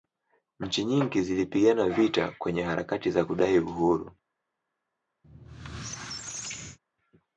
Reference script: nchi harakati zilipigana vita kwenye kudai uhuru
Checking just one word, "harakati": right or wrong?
wrong